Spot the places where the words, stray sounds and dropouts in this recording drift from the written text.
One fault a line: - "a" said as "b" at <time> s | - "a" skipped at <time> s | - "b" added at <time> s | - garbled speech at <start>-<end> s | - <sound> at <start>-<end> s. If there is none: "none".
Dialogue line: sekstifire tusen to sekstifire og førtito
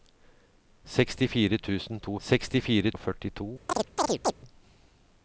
- chirp at 3.7-4.3 s